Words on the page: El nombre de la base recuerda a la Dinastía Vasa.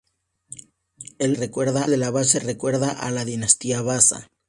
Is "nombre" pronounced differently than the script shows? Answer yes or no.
yes